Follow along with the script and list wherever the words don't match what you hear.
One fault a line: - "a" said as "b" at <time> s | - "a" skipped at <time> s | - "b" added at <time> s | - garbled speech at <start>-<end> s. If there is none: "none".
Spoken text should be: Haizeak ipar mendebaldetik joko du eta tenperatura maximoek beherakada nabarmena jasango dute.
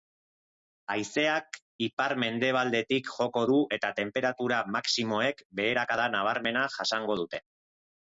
none